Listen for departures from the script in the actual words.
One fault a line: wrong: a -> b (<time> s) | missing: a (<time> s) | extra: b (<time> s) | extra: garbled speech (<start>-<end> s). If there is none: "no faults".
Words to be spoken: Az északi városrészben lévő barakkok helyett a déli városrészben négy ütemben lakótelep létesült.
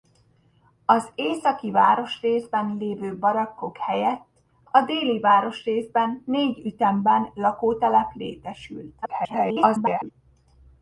extra: garbled speech (9.0-10.1 s)